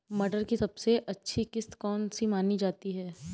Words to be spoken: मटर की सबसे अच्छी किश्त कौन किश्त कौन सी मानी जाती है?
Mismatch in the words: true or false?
true